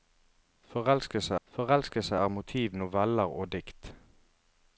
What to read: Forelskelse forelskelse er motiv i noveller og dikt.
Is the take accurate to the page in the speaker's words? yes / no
yes